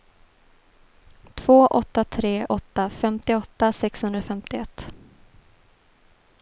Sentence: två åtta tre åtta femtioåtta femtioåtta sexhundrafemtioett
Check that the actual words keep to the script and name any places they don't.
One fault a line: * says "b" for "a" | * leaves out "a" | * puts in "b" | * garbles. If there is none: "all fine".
* leaves out "femtioåtta"